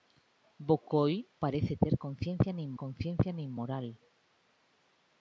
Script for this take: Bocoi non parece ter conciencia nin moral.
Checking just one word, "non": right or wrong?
wrong